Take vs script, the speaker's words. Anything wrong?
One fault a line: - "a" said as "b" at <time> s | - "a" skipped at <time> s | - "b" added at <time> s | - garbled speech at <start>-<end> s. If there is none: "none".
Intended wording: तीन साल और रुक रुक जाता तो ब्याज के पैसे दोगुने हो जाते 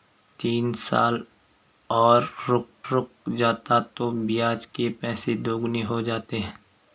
none